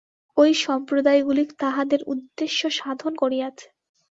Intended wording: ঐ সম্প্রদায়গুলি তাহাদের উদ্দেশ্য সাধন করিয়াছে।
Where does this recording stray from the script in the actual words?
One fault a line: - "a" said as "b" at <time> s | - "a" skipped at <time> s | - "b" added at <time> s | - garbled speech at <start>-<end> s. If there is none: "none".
none